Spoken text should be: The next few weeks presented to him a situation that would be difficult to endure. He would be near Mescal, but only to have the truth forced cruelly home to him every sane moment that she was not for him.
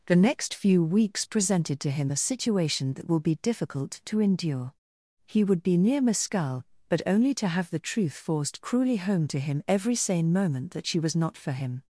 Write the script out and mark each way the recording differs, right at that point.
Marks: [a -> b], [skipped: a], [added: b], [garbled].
The next few weeks presented to him a situation that [would -> will] be difficult to endure. He would be near Mescal, but only to have the truth forced cruelly home to him every sane moment that she was not for him.